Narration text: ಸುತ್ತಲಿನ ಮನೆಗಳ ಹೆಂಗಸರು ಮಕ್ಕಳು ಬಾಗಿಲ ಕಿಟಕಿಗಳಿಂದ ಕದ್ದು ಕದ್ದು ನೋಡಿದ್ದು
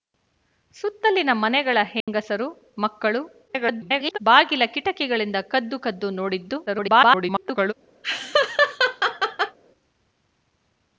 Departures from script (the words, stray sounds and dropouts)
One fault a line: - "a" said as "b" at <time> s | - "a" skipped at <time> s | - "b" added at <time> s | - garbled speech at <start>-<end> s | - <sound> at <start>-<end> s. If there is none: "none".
- dropout at 2.0-2.1 s
- garbled speech at 3.5-4.2 s
- garbled speech at 6.7-7.7 s
- laugh at 8.0-9.6 s